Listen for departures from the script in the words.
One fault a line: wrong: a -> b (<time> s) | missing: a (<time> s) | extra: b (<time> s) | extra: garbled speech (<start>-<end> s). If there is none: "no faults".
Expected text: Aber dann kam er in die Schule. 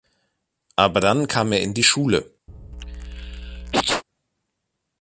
no faults